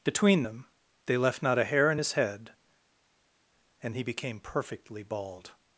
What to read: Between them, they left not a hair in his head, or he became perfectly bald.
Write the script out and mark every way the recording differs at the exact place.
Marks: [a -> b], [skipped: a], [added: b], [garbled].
Between them, they left not a hair in his head, [or -> and] he became perfectly bald.